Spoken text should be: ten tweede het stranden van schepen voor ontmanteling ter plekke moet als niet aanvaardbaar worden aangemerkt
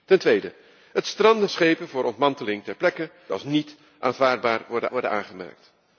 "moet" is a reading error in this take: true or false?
true